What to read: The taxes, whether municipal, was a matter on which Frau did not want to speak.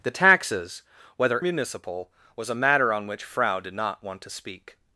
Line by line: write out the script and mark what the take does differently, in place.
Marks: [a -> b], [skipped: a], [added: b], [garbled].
The taxes, whether municipal, was a matter on which Frau did not want to speak.